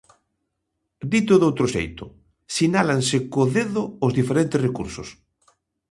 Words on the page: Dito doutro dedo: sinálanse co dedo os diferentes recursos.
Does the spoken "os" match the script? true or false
true